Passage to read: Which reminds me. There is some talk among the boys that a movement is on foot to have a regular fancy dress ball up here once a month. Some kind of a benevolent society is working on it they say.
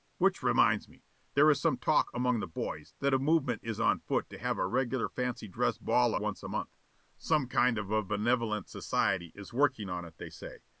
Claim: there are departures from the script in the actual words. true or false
true